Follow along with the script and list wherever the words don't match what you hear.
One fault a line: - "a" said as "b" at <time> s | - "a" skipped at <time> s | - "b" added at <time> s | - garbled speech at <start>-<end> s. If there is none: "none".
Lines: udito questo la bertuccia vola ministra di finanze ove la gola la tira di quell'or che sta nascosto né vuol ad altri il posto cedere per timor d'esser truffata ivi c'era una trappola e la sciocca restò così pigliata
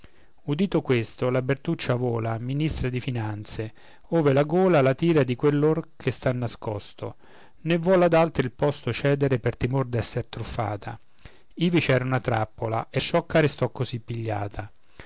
- "la" skipped at 13.0 s